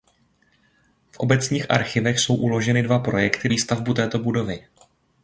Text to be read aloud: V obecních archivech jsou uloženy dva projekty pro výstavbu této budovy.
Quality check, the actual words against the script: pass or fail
fail